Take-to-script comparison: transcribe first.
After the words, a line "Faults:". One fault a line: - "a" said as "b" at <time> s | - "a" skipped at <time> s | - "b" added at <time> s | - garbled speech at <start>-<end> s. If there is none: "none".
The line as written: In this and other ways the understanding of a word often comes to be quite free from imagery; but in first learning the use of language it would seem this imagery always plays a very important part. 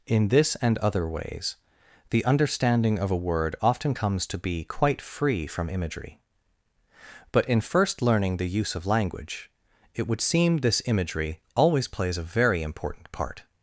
In this and other ways the understanding of a word often comes to be quite free from imagery; but in first learning the use of language it would seem this imagery always plays a very important part.
Faults:
none